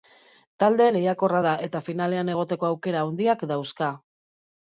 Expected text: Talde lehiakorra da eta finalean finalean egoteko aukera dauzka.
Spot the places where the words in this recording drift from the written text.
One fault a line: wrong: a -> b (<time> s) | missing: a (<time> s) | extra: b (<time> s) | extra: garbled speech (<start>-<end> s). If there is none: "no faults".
missing: finalean (2.3 s)
extra: handiak (3.1 s)